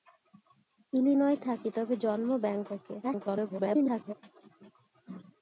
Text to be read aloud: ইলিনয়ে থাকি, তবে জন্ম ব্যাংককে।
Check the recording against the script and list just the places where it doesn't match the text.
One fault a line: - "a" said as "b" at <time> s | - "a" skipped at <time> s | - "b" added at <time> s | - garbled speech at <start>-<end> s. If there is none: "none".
- garbled speech at 3.0-4.1 s